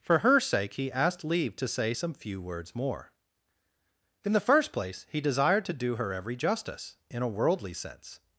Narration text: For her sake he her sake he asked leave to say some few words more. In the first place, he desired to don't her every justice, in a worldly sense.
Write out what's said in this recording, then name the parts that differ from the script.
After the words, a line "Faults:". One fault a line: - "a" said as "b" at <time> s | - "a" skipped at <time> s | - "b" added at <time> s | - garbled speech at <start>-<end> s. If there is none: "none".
For her sake he asked leave to say some few words more. In the first place, he desired to do her every justice, in a worldly sense.
Faults:
- "her sake he" skipped at 0.9 s
- "don't" said as "do" at 5.7 s